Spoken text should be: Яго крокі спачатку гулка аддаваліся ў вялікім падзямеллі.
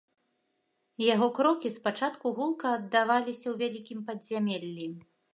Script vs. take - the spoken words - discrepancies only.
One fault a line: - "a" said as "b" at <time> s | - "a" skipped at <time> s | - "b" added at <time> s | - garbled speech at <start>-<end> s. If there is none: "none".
none